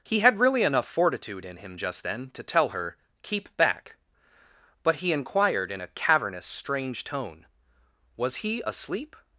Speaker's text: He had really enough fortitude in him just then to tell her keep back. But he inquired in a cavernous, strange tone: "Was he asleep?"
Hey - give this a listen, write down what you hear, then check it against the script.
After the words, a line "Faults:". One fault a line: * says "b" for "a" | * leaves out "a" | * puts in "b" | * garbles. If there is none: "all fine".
He had really enough fortitude in him just then to tell her keep back. But he inquired in a cavernous, strange tone: "Was he asleep?"
Faults:
all fine